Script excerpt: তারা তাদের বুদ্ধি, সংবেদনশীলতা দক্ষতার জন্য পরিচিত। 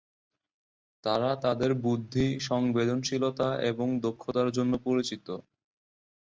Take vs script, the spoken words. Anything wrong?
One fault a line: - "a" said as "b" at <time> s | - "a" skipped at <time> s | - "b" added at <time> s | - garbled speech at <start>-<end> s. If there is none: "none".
- "এবং" added at 3.7 s